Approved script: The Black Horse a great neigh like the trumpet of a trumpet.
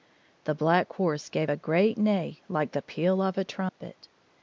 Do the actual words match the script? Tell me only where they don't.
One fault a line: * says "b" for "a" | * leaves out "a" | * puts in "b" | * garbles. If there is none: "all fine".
* puts in "gave"
* says "peal" for "trumpet"